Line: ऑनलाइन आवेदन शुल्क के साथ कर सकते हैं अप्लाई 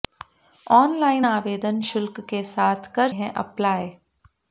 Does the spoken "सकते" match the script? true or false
false